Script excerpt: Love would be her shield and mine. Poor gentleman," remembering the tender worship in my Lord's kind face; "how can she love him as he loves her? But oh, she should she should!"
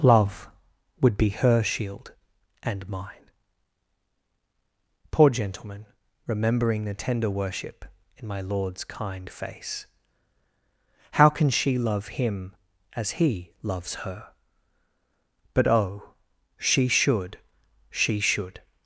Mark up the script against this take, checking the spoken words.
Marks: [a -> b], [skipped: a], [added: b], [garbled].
Love would be her shield and mine. Poor gentleman," remembering the tender worship in my Lord's kind face; "how can she love him as he loves her? But oh, she should she should!"